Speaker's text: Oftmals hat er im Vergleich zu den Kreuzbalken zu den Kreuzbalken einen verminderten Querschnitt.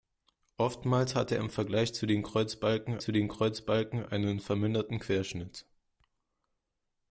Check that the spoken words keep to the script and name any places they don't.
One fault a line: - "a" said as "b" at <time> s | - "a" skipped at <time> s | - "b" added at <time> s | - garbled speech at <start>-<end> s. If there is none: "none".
none